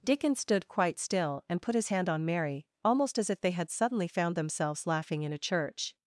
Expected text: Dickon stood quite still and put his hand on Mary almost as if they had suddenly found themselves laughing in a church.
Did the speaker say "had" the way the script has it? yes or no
yes